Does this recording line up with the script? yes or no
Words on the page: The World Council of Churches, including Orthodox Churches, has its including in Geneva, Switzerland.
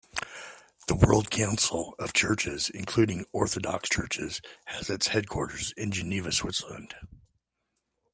no